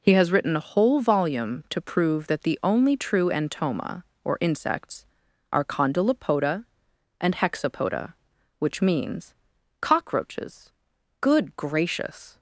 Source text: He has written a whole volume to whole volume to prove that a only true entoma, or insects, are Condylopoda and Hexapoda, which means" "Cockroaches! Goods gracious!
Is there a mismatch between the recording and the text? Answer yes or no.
yes